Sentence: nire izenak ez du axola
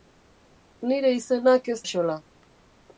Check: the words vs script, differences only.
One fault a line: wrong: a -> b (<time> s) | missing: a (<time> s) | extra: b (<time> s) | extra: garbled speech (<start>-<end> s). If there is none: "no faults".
missing: du (1.8 s)